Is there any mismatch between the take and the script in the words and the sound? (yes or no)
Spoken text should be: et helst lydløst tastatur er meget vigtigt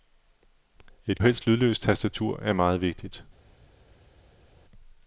no